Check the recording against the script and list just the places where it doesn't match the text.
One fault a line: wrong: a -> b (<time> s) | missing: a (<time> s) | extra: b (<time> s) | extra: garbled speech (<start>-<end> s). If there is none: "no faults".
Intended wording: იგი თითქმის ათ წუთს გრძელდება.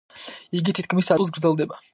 missing: ათ (1.1 s)